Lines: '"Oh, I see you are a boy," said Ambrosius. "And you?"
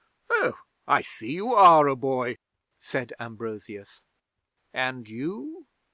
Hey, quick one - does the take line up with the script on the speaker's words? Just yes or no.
yes